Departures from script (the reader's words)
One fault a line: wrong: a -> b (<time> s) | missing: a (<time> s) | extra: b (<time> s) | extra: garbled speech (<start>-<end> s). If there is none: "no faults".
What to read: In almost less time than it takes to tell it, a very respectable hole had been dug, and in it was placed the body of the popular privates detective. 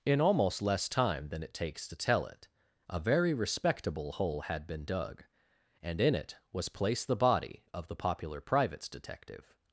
no faults